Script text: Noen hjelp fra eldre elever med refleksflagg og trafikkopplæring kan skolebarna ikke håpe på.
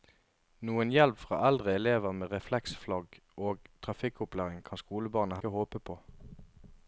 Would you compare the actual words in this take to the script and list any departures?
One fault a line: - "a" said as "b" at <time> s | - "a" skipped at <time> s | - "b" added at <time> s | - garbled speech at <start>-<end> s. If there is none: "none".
none